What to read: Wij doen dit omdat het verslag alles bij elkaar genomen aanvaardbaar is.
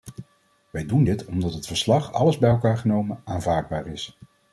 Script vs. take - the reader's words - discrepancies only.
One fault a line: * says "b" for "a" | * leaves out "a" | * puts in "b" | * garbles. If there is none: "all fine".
all fine